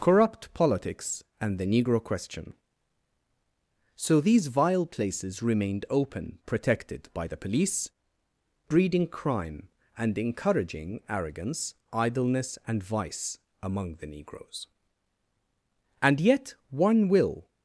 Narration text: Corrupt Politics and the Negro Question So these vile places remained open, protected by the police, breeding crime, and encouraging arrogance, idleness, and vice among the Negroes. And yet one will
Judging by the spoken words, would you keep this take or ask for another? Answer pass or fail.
pass